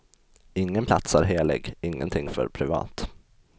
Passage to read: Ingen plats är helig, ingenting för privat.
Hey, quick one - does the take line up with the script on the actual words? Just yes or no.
yes